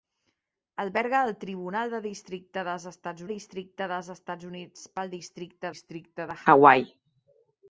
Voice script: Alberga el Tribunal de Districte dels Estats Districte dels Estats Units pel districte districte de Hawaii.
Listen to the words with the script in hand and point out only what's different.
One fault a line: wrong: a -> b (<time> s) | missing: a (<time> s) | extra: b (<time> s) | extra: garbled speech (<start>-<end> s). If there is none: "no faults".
no faults